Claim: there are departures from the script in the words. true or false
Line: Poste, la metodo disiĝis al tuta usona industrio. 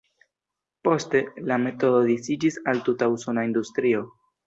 false